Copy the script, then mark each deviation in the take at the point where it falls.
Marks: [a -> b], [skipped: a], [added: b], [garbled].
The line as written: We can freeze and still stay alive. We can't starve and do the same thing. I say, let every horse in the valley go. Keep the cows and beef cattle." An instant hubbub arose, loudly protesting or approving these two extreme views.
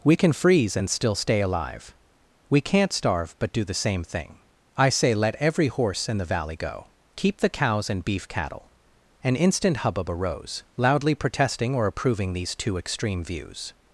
We can freeze and still stay alive. We can't starve [and -> but] do the same thing. I say, let every horse in the valley go. Keep the cows and beef cattle." An instant hubbub arose, loudly protesting or approving these two extreme views.